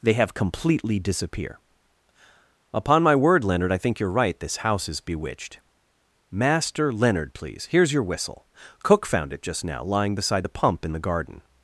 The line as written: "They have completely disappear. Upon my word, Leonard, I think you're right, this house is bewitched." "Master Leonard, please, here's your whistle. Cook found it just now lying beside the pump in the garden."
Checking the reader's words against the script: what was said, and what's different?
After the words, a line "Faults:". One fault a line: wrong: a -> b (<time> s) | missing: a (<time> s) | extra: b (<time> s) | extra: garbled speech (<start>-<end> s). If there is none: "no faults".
"They have completely disappear. Upon my word, Leonard, I think you're right, this house is bewitched." "Master Leonard, please, here's your whistle. Cook found it just now lying beside the pump in the garden."
Faults:
no faults